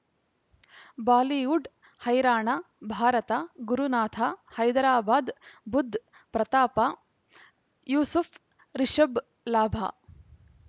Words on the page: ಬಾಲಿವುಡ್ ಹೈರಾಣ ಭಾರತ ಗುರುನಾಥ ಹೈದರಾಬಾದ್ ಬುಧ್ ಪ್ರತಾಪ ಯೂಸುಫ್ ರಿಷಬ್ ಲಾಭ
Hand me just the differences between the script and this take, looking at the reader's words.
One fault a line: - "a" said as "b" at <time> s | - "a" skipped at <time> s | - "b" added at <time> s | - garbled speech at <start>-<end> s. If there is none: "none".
none